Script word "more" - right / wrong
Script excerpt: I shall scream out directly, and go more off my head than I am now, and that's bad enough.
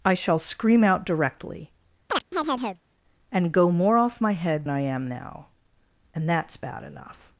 right